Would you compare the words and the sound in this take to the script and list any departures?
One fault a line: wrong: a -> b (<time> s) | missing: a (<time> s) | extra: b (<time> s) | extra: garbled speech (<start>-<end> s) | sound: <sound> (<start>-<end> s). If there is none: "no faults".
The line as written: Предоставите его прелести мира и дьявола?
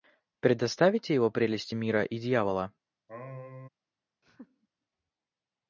sound: sneeze (3.1-3.7 s)
sound: laugh (4.2-4.7 s)